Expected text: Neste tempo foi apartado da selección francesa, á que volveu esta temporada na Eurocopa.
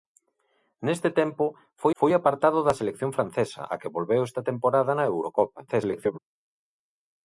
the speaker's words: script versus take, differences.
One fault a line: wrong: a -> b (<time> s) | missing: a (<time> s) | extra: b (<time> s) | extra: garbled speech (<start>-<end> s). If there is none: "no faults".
extra: foi (2.0 s)
extra: garbled speech (5.7-6.2 s)